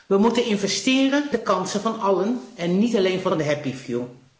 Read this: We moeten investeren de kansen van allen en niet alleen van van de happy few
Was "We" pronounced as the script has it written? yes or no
yes